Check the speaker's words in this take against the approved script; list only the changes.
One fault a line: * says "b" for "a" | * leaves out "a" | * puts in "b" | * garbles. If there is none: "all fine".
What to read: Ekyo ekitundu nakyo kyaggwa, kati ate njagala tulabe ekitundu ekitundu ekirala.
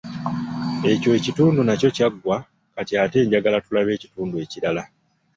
* leaves out "ekitundu"